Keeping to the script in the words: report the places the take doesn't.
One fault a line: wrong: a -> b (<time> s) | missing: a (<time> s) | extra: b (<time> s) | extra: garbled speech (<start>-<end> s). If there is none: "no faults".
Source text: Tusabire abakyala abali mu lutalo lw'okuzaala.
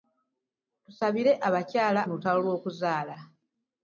missing: abali (2.0 s)